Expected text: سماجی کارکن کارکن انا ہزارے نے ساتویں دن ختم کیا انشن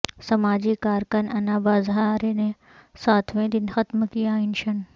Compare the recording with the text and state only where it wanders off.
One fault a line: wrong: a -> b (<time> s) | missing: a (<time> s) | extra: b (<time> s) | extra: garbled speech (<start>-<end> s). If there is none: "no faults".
missing: کارکن (1.3 s)